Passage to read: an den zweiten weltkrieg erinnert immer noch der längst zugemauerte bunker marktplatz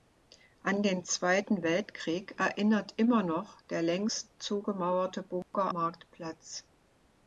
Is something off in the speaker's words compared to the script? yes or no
no